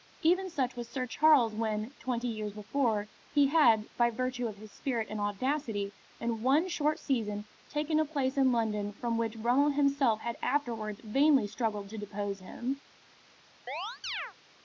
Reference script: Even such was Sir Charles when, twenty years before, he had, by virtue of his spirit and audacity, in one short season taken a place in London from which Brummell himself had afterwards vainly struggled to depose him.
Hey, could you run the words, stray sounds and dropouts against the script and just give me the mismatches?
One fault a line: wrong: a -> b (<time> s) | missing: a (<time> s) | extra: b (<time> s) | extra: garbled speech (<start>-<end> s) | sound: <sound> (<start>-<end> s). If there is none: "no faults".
sound: chirp (13.7-14.3 s)